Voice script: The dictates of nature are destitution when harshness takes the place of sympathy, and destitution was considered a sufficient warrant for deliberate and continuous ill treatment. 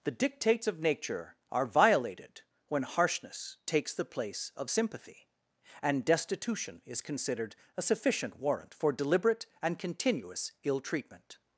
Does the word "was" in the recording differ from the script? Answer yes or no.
yes